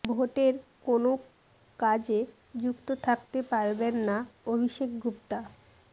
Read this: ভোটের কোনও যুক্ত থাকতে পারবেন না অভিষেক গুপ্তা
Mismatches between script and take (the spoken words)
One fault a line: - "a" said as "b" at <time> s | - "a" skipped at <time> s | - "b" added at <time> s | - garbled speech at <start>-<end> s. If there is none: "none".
- "কাজে" added at 1.8 s